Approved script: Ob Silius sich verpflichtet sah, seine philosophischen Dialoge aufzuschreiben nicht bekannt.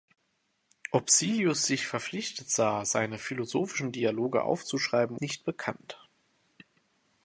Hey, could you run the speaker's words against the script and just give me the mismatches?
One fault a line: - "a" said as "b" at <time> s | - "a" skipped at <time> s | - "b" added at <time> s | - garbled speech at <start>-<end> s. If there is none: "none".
none